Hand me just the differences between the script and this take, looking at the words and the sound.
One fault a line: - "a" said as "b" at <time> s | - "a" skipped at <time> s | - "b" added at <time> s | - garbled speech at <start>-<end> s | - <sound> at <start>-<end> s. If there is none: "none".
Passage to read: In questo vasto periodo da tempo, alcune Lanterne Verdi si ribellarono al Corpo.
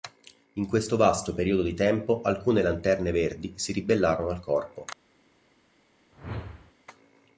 - "da" said as "di" at 1.6 s
- whoosh at 6.1-6.7 s